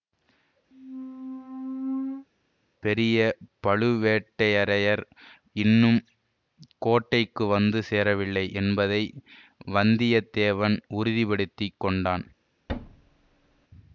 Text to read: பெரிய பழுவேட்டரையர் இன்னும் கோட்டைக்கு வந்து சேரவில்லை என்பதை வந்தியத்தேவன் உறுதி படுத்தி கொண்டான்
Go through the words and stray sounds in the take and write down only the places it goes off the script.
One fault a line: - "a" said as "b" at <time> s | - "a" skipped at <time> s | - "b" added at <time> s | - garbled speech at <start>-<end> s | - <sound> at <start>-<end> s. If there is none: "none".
- squeak at 0.7-2.3 s
- thud at 12.7-13.7 s